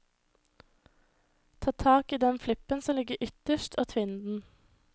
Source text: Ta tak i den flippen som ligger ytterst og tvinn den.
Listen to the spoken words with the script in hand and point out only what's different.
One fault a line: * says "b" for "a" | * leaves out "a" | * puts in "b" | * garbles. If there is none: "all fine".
all fine